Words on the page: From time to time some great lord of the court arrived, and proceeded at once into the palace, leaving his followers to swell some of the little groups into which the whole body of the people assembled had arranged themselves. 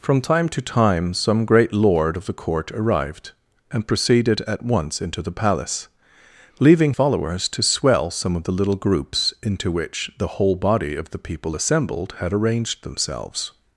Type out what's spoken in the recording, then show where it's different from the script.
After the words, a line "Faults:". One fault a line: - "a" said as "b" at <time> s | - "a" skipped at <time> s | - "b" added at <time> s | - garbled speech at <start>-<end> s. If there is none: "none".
From time to time some great lord of the court arrived, and proceeded at once into the palace, leaving followers to swell some of the little groups into which the whole body of the people assembled had arranged themselves.
Faults:
- "his" skipped at 7.0 s